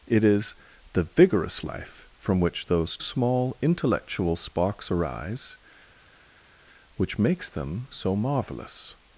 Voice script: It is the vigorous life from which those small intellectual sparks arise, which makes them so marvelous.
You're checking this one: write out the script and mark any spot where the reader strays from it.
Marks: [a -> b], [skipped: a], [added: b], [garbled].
It is the vigorous life from which those small intellectual sparks arise, which makes them so marvelous.